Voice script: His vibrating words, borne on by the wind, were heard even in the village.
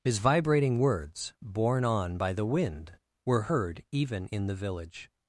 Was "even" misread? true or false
false